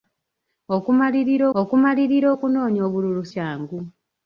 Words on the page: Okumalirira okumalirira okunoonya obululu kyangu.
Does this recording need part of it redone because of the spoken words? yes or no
no